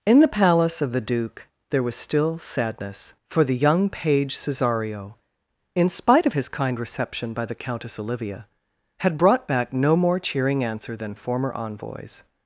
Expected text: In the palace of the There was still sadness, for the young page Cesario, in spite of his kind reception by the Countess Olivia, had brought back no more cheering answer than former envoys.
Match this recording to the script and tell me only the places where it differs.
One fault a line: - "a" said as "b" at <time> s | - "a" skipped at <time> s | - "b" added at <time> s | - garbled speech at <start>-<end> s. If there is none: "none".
- "Duke" added at 1.0 s